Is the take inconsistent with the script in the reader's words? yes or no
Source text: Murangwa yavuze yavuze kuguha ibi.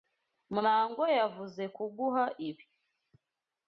yes